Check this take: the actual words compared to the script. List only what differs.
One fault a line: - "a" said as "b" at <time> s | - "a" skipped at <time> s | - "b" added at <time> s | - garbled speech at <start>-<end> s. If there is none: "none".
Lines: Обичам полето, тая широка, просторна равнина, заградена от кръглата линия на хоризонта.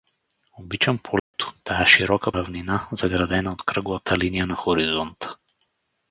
- "просторна" skipped at 2.3 s